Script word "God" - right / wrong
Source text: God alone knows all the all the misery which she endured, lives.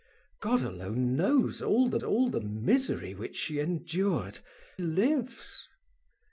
right